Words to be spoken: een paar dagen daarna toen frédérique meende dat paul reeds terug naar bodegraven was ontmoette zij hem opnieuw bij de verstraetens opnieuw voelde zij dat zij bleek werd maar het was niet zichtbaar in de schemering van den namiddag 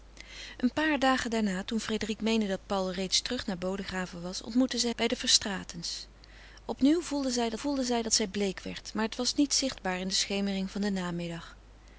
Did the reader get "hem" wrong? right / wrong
wrong